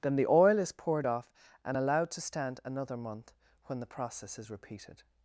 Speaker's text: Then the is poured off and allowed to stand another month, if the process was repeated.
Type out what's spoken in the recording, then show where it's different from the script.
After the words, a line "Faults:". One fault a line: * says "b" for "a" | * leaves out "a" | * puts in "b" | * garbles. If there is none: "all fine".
Then the oil is poured off and allowed to stand another month, when the process is repeated.
Faults:
* puts in "oil"
* says "when" for "if"
* says "is" for "was"